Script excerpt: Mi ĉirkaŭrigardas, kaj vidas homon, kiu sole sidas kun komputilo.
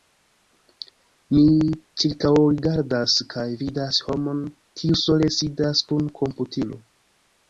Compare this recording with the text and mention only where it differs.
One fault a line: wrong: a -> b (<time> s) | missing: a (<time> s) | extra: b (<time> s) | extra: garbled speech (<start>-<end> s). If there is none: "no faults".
no faults